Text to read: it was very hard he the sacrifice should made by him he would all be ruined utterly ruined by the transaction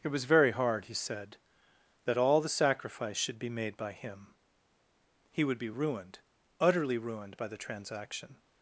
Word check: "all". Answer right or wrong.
wrong